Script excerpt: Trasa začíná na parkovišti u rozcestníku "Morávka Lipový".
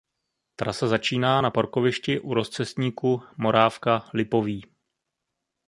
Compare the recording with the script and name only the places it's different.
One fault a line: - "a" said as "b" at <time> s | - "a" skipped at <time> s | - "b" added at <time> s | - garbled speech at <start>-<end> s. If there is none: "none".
none